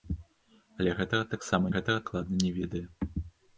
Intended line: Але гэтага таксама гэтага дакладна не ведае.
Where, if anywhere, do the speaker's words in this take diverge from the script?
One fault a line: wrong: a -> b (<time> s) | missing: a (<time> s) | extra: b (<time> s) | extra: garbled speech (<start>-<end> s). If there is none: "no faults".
no faults